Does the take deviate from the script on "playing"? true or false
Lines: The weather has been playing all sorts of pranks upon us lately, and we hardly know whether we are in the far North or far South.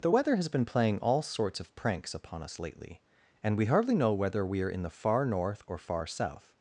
false